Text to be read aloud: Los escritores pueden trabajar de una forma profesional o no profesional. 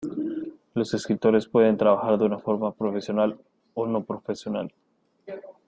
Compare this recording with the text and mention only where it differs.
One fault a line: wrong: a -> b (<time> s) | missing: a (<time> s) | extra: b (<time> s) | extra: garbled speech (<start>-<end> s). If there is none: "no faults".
no faults